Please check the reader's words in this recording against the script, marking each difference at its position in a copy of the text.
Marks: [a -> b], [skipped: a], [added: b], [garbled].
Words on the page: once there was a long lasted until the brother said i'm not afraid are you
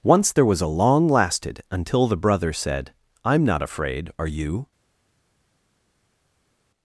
once there was a long lasted until the brother said i'm not afraid are you